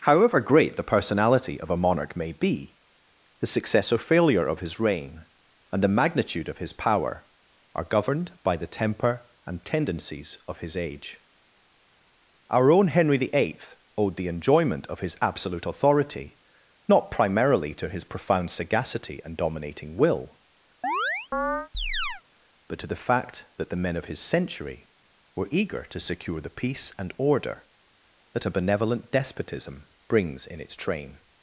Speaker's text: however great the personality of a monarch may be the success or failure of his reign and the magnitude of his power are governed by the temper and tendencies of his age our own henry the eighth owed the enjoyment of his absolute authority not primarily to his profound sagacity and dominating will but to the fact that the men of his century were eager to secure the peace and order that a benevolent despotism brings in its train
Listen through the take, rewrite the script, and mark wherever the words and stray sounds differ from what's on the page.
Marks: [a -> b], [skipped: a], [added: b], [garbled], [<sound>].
however great the personality of a monarch may be the success or failure of his reign and the magnitude of his power are governed by the temper and tendencies of his age our own henry the eighth owed the enjoyment of his absolute authority not primarily to his profound sagacity and dominating will [chirp] but to the fact that the men of his century were eager to secure the peace and order that a benevolent despotism brings in its train